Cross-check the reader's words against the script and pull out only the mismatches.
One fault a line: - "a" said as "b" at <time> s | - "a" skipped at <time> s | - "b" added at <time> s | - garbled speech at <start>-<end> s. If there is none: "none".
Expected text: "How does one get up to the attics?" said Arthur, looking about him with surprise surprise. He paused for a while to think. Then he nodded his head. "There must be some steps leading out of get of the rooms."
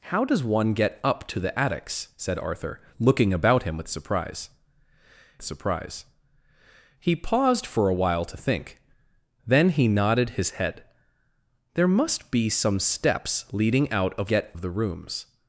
none